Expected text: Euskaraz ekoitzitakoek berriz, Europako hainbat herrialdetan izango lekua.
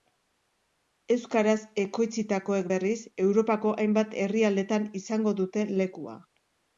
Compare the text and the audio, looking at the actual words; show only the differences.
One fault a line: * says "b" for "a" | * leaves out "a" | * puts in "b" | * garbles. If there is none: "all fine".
* puts in "dute"